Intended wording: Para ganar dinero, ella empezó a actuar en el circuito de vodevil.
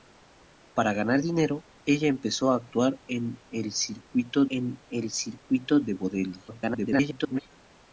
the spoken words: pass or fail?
fail